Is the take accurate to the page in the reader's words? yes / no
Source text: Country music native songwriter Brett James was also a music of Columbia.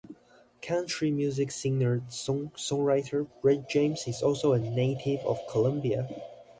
no